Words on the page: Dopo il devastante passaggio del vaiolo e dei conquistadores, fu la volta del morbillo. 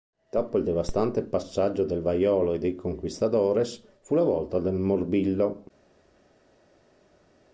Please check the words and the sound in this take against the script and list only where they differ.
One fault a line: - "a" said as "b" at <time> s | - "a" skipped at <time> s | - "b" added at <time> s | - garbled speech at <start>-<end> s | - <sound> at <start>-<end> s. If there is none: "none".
none